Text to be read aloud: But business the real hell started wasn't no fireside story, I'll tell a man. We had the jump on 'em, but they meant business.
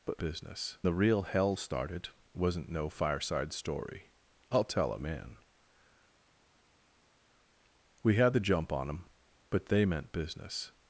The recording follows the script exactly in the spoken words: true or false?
true